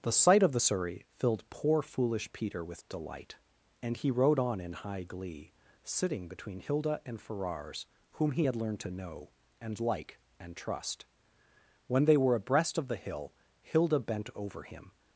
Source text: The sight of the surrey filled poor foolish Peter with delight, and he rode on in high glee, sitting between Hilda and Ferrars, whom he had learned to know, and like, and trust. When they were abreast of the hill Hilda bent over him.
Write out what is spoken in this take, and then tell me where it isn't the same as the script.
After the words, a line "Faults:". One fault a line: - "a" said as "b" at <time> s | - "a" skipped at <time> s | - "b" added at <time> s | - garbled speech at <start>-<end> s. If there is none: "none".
The sight of the surrey filled poor foolish Peter with delight, and he rode on in high glee, sitting between Hilda and Ferrars, whom he had learned to know, and like, and trust. When they were abreast of the hill Hilda bent over him.
Faults:
none